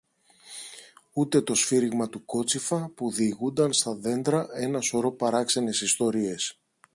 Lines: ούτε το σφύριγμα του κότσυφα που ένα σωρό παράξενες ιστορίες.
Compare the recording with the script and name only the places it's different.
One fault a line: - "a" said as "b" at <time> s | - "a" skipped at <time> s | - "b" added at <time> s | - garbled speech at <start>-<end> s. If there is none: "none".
- "διηγούνταν στα δέντρα" added at 3.1 s